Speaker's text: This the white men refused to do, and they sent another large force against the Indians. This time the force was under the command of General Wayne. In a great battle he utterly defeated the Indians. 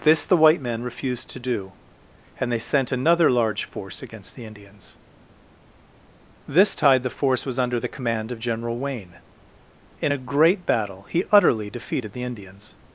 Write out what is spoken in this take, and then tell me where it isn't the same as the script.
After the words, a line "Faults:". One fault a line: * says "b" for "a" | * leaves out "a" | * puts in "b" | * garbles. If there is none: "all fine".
This the white men refused to do, and they sent another large force against the Indians. This tide the force was under the command of General Wayne. In a great battle he utterly defeated the Indians.
Faults:
* says "tide" for "time"